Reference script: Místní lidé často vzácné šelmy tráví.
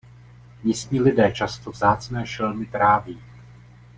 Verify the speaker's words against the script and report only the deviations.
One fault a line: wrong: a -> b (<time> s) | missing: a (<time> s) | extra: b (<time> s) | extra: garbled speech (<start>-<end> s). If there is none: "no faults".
no faults